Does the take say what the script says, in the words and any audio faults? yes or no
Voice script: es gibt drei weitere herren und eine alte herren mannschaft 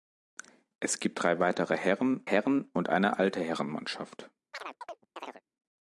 no